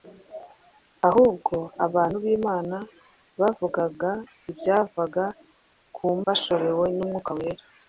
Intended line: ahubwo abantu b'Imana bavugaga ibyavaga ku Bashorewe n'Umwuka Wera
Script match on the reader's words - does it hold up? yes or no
yes